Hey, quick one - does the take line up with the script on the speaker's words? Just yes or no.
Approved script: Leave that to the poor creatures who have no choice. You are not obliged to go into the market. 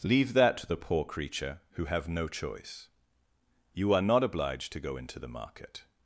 no